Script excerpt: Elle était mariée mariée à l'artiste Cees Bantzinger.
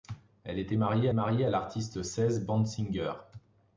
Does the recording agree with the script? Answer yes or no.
yes